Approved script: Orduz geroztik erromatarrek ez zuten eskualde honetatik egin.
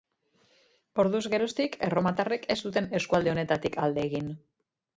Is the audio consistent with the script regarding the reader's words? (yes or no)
no